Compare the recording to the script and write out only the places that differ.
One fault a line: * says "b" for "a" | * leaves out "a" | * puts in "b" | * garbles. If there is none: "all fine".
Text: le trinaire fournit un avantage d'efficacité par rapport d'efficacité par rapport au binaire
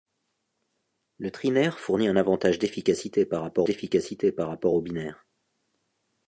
all fine